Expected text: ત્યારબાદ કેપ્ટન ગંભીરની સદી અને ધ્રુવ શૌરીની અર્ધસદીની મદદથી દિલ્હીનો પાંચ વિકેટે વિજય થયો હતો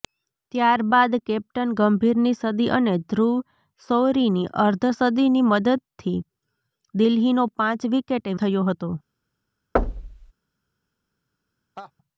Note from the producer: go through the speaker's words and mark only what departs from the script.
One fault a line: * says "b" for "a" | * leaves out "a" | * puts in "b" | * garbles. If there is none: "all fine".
* leaves out "વિજય"